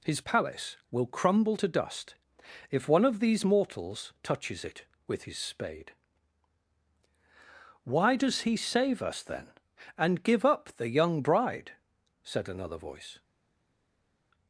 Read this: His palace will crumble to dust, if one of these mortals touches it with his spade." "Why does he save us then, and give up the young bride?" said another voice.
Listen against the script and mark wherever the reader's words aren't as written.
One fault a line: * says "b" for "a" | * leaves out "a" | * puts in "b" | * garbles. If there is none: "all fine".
all fine